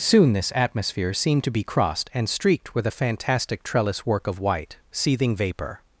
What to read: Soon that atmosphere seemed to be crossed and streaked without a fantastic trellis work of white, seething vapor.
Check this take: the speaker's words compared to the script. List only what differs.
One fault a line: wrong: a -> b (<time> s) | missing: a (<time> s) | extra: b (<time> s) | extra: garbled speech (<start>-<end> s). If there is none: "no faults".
wrong: that -> this (0.3 s)
wrong: without -> with (2.7 s)